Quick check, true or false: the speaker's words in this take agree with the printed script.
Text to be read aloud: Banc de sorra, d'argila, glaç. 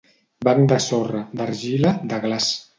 false